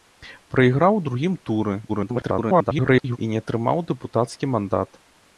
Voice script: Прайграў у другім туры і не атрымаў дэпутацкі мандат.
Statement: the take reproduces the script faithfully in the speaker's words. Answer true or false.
false